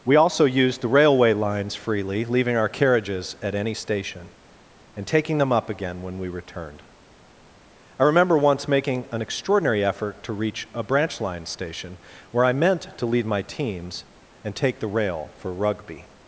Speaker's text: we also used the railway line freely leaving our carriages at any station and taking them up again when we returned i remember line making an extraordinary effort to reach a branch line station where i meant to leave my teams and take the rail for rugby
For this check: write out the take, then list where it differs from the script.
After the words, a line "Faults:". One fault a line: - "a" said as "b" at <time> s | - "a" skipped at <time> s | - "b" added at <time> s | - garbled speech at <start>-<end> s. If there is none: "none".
we also used the railway lines freely leaving our carriages at any station and taking them up again when we returned i remember once making an extraordinary effort to reach a branch line station where i meant to leave my teams and take the rail for rugby
Faults:
- "line" said as "lines" at 1.3 s
- "line" said as "once" at 8.4 s